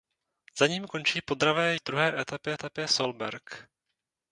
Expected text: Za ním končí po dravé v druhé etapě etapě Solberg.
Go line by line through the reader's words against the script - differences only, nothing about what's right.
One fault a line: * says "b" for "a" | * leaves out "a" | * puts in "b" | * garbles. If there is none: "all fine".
all fine